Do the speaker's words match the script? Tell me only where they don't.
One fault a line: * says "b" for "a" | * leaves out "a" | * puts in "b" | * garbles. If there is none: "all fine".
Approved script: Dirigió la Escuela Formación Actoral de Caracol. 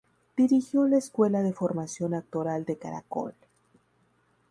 * puts in "de"